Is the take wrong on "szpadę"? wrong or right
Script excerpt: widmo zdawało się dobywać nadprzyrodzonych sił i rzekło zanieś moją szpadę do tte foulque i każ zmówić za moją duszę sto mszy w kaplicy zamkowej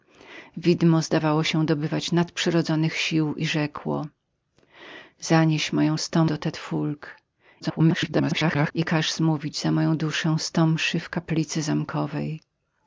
wrong